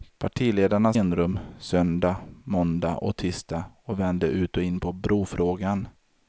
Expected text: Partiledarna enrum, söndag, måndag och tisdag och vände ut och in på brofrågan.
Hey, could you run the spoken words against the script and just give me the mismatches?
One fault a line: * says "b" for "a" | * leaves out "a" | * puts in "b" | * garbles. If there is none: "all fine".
all fine